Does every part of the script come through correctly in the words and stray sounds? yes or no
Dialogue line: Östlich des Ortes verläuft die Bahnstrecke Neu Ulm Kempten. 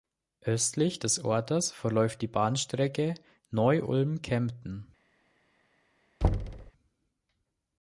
no